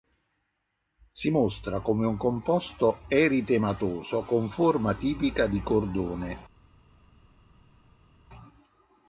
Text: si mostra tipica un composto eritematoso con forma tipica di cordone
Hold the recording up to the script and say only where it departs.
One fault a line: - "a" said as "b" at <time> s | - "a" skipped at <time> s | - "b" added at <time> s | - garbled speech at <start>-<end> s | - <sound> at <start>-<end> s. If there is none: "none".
- "tipica" said as "come" at 1.8 s